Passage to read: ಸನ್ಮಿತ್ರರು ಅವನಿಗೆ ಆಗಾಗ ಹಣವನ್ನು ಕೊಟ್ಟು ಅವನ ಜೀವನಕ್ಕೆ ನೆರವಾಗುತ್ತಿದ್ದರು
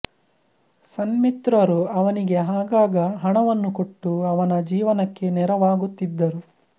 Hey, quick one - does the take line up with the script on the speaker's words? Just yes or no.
yes